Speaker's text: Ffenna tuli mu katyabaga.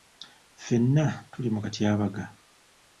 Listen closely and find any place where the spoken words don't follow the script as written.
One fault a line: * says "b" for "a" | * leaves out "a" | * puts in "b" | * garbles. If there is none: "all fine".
all fine